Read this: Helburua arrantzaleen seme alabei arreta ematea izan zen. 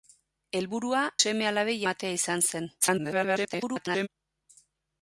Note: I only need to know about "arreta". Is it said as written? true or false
false